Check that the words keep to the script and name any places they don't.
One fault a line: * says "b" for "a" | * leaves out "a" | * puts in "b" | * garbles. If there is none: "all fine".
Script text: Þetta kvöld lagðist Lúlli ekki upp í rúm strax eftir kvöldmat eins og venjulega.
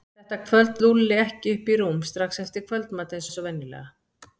* leaves out "lagðist"
* puts in "eins"